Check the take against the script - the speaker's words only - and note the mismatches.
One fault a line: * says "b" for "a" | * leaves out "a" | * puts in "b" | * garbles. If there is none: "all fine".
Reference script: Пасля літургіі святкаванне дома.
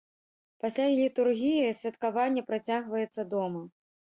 * puts in "працягваецца"